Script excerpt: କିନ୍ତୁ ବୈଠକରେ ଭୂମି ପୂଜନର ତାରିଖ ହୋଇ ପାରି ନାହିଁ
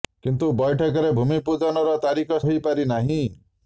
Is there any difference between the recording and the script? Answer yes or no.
no